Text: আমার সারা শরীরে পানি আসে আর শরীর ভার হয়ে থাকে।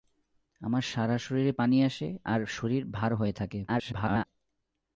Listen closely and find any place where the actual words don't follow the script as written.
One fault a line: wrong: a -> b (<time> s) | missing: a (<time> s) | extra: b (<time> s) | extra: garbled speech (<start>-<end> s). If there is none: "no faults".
extra: garbled speech (3.7-4.3 s)